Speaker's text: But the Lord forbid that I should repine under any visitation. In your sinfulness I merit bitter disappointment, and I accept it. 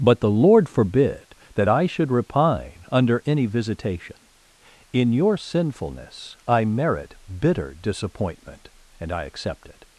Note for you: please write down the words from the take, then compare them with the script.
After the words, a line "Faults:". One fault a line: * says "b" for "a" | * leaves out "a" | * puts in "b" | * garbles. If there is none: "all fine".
But the Lord forbid that I should repine under any visitation. In your sinfulness I merit bitter disappointment, and I accept it.
Faults:
all fine